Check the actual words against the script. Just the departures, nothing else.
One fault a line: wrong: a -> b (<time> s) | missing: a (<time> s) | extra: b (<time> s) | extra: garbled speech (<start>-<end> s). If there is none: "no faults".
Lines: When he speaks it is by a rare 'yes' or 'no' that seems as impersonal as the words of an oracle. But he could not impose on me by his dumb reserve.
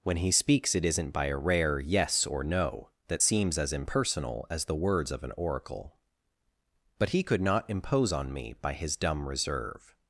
wrong: is -> isn't (0.8 s)